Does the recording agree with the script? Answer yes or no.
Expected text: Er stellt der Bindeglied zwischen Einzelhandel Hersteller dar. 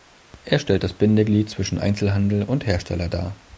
no